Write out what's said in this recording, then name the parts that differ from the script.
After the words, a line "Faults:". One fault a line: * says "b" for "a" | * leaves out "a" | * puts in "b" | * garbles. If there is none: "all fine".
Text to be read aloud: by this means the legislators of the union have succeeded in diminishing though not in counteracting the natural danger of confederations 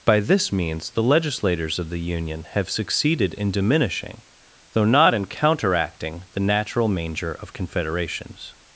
by this means the legislators of the union have succeeded in diminishing though not in counteracting the natural manger of confederations
Faults:
* says "manger" for "danger"